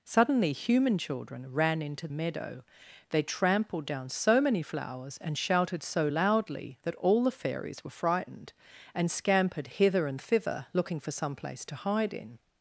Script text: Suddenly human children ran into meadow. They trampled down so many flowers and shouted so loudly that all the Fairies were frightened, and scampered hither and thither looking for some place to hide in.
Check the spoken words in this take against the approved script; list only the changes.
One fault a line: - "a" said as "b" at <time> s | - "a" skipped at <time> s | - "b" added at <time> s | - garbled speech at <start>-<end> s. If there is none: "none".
none